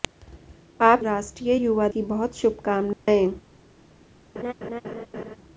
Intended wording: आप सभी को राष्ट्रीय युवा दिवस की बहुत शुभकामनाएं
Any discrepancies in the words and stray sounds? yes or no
yes